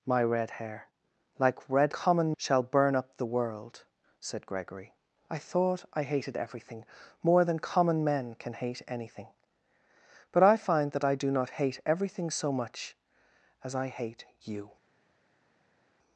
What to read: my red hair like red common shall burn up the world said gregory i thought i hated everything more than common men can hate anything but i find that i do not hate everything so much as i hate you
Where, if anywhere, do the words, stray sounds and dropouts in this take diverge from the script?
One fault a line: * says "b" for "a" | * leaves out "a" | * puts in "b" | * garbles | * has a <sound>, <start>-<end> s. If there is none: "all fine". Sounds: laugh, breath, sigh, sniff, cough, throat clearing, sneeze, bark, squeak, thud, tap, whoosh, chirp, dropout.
all fine